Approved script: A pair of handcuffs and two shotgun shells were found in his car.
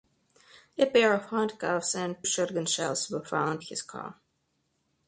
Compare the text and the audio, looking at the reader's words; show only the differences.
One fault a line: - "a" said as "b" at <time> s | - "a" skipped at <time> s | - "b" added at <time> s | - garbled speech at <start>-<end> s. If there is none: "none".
- "two" skipped at 2.2 s
- "in" skipped at 3.6 s